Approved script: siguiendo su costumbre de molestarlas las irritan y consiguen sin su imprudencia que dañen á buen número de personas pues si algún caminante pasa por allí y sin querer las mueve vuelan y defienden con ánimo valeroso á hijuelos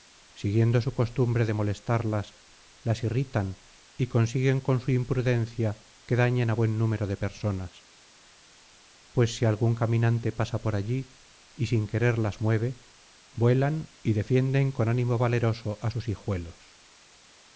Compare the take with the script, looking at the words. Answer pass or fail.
fail